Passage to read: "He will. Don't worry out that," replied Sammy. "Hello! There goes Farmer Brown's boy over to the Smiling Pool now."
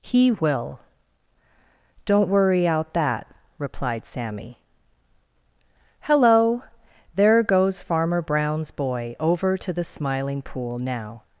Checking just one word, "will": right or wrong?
right